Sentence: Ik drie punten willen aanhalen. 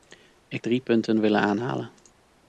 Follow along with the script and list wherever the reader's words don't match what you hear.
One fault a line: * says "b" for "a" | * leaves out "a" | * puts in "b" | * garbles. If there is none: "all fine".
all fine